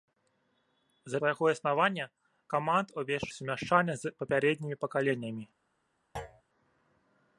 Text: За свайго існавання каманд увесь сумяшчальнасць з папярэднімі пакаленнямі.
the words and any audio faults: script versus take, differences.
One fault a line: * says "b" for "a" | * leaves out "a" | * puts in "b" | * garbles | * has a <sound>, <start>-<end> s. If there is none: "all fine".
* has a thud, 6.2-6.4 s